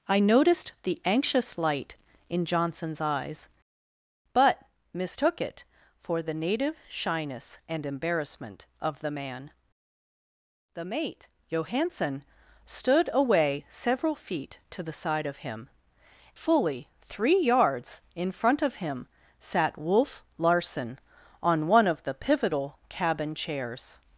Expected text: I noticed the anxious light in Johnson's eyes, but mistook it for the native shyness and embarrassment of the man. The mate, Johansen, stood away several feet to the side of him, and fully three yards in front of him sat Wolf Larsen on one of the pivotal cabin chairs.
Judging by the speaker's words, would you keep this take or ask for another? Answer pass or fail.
fail